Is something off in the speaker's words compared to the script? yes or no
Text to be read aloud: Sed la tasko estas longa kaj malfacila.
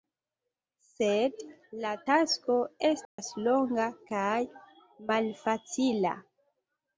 no